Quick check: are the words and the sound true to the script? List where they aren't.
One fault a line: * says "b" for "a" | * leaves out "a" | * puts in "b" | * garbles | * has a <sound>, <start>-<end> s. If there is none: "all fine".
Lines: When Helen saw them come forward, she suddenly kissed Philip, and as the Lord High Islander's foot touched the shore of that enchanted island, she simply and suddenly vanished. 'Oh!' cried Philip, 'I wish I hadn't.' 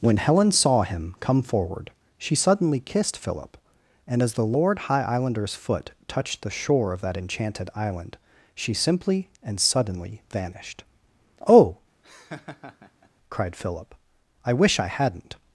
* says "him" for "them"
* has a laugh, 12.0-13.1 s